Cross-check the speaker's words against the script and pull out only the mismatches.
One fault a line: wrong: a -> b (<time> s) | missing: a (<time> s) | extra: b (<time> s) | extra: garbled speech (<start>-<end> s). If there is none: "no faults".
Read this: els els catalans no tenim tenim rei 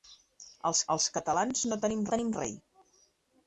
no faults